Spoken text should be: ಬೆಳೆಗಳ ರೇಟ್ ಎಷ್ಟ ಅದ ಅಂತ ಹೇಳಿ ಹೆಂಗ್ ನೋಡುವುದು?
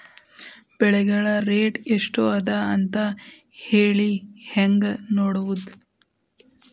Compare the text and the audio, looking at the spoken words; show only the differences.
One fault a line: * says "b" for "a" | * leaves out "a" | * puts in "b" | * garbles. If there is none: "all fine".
all fine